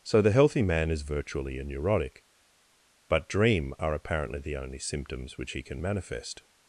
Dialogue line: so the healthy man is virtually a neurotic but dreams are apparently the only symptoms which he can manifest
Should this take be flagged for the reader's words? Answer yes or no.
yes